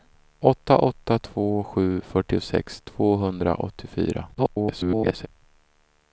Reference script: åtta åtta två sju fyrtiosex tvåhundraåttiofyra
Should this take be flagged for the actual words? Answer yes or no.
yes